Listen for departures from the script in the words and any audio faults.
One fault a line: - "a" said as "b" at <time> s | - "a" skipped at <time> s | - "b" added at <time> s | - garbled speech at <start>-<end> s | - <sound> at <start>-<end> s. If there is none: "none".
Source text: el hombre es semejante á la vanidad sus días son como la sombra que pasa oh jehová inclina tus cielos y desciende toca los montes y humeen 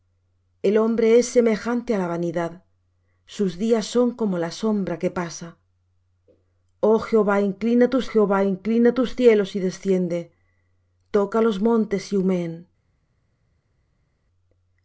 - "jehová inclina tus" added at 8.1 s